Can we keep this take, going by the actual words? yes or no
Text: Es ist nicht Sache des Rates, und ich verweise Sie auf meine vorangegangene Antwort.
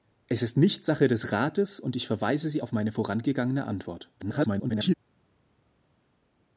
no